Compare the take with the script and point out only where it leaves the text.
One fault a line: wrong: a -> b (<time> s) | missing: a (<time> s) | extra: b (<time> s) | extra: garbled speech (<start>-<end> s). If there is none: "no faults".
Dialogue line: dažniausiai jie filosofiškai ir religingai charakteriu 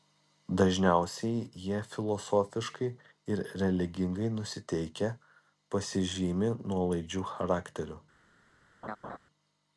extra: nusiteikę pasižymi nuolaidžiu (4.4 s)